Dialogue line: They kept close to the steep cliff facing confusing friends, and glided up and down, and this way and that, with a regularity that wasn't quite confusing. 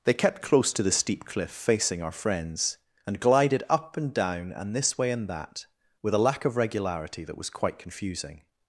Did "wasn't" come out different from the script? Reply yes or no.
yes